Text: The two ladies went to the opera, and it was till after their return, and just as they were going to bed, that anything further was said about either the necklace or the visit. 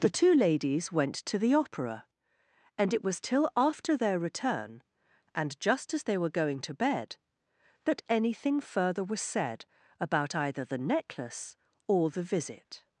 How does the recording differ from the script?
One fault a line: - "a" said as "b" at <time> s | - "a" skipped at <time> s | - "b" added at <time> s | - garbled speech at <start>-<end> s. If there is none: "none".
none